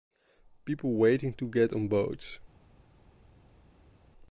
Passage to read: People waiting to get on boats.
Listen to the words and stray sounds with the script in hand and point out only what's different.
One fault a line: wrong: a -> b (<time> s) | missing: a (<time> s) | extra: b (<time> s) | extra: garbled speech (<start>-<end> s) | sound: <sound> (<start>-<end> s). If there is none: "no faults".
no faults